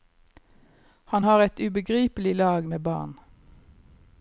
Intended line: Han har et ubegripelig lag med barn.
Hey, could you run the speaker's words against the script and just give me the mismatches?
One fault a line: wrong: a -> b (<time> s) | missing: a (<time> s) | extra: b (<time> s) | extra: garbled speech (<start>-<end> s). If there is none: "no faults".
no faults